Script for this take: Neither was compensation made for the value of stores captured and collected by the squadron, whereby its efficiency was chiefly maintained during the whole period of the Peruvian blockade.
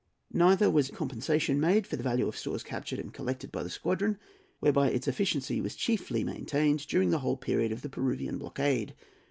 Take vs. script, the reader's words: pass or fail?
pass